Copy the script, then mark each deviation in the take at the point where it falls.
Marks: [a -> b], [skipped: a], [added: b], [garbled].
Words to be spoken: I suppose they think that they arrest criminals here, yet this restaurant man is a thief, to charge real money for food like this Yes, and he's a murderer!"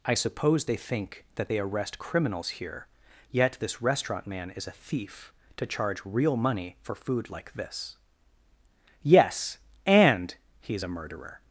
I suppose they think that they arrest criminals here, yet this restaurant man is a thief, to charge real money for food like this Yes, and he's a murderer!"